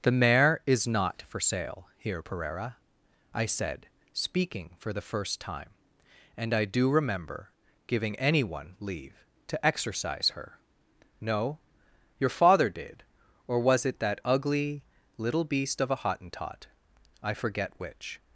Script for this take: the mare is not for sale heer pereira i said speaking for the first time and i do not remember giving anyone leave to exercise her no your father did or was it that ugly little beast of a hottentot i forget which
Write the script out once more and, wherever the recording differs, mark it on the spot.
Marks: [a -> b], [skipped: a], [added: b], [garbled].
the mare is not for sale heer pereira i said speaking for the first time and i do [skipped: not] remember giving anyone leave to exercise her no your father did or was it that ugly little beast of a hottentot i forget which